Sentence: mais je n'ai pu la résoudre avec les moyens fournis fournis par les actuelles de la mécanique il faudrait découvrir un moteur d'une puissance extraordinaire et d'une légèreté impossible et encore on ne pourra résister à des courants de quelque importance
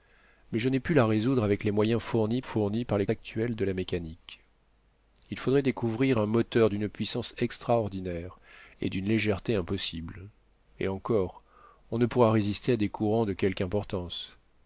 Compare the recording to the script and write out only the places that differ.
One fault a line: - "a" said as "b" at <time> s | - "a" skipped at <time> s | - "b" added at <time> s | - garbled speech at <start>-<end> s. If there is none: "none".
none